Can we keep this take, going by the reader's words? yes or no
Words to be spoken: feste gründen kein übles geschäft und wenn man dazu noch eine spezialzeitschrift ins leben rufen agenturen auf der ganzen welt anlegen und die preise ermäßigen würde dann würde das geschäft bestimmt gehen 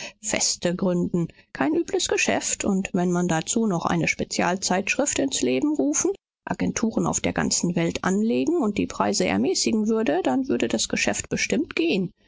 yes